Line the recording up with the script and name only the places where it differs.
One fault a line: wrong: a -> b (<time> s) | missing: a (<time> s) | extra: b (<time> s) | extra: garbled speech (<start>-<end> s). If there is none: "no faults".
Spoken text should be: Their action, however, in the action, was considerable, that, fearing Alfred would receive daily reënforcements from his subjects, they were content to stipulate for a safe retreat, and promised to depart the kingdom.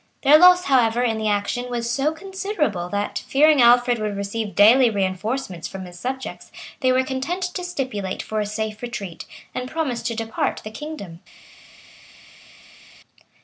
wrong: action -> loss (0.4 s)
extra: so (1.9 s)